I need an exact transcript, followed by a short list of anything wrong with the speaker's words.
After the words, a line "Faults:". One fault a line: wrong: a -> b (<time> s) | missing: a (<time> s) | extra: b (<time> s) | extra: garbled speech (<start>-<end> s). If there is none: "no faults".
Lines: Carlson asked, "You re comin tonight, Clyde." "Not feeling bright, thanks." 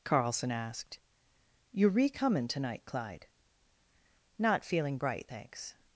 Carlson asked, "You re comin tonight, Clyde." "Not feeling bright, thanks."
Faults:
no faults